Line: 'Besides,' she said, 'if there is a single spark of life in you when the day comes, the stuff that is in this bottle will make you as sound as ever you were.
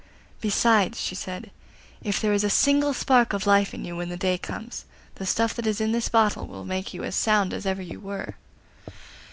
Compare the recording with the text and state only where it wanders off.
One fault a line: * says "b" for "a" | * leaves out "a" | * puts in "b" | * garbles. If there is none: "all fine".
all fine